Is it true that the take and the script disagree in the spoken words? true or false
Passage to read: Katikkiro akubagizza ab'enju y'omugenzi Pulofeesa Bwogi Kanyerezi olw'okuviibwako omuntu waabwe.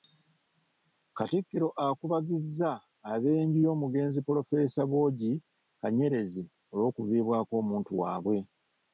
false